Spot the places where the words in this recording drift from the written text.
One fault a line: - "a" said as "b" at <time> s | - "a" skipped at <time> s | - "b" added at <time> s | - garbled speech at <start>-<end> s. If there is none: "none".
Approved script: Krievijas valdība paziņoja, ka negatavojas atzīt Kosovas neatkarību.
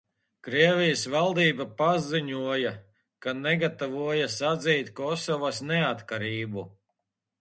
none